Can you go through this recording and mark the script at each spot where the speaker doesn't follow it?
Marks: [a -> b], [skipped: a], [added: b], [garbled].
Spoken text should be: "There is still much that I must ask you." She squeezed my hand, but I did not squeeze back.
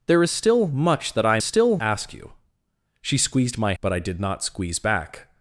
"There is still much that I [must -> still] ask you." She squeezed my [skipped: hand,] but I did not squeeze back.